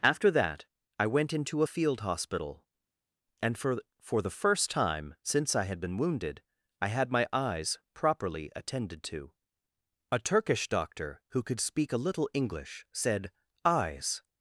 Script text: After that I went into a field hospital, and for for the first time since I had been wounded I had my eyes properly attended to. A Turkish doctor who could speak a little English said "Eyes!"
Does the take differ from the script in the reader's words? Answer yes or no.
no